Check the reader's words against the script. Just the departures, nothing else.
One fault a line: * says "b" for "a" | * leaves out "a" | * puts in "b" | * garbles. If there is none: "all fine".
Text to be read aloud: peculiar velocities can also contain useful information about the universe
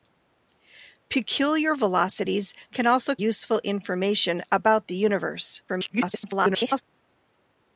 * leaves out "contain"
* garbles